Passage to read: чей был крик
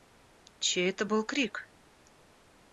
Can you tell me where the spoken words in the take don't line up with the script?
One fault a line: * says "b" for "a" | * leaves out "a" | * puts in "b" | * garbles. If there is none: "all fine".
* puts in "это"